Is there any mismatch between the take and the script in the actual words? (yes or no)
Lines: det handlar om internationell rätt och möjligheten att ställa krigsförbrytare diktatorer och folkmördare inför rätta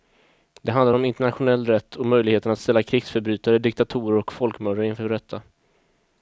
no